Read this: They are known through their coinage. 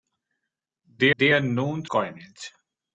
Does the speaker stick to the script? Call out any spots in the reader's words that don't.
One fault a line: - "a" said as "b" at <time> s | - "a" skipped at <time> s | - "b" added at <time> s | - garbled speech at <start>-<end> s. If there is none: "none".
- "they" added at 1.2 s
- "through their" skipped at 1.9 s